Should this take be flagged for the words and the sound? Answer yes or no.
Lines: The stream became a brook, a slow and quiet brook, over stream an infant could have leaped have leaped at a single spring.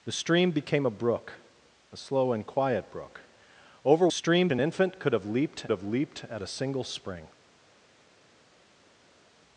no